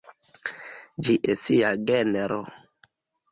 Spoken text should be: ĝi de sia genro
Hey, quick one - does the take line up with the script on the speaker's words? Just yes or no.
yes